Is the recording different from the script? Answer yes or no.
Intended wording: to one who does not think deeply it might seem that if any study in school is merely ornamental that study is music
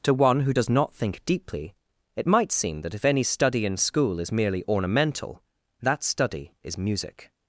no